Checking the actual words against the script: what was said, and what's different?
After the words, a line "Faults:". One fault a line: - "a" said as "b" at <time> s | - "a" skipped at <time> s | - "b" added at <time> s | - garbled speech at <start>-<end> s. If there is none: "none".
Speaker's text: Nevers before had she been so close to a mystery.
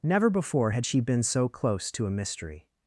Never before had she been so close to a mystery.
Faults:
- "Nevers" said as "Never" at 0.0 s